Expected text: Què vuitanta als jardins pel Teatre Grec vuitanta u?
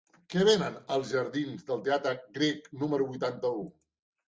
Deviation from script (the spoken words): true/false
true